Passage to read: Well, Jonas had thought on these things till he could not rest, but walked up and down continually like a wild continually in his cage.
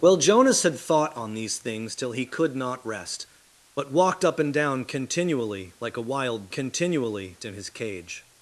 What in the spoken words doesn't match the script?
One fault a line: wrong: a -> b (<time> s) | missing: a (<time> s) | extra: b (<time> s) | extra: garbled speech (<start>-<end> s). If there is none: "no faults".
no faults